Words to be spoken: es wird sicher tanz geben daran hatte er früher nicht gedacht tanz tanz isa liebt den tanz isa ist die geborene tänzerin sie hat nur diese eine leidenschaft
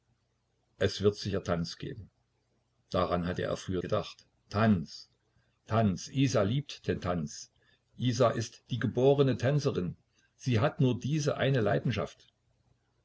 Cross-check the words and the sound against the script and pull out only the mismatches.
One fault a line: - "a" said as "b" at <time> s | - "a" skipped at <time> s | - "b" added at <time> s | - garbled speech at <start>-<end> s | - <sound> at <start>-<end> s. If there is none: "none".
- "nicht" skipped at 3.8 s